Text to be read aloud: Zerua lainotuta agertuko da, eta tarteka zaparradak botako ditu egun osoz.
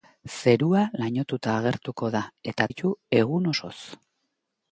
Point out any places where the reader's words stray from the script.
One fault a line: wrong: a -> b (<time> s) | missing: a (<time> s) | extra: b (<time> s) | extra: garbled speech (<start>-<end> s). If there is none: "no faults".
missing: tarteka zaparradak botako (2.7 s)